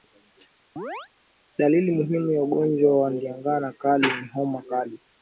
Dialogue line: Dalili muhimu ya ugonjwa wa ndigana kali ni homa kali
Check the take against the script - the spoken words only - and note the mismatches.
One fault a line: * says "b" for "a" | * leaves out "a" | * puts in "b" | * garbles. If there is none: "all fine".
all fine